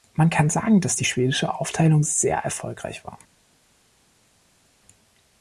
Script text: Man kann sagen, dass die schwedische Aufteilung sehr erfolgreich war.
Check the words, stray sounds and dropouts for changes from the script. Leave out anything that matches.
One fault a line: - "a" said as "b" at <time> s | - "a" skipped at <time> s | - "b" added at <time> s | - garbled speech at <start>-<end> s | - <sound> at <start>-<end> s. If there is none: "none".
none